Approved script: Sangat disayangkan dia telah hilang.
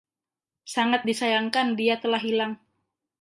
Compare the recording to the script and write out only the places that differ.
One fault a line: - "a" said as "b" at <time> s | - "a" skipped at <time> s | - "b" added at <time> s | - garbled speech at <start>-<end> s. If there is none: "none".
none